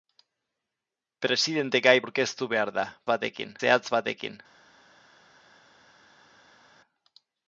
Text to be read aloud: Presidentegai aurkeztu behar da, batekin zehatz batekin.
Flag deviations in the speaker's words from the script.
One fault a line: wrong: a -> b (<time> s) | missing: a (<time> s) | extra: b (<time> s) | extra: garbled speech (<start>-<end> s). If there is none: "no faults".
no faults